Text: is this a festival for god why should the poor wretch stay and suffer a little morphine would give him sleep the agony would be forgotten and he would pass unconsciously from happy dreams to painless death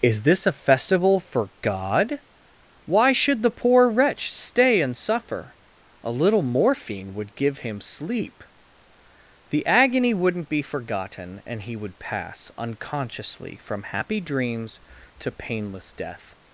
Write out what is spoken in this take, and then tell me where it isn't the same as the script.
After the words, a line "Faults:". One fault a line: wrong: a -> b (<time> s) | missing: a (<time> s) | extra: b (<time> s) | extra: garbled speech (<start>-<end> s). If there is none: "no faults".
is this a festival for god why should the poor wretch stay and suffer a little morphine would give him sleep the agony wouldn't be forgotten and he would pass unconsciously from happy dreams to painless death
Faults:
wrong: would -> wouldn't (10.1 s)